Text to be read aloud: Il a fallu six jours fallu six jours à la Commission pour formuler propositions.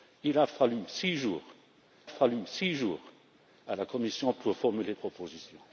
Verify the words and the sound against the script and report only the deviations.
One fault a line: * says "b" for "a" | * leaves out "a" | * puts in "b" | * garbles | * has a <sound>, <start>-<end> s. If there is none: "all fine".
all fine